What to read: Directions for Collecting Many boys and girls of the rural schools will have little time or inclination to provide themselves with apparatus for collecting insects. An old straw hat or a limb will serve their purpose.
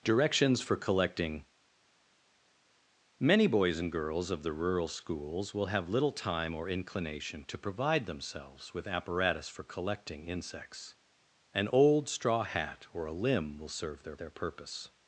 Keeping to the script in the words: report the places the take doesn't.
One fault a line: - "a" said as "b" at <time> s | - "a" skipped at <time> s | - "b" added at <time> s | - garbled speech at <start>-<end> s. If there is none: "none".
- "their" added at 14.2 s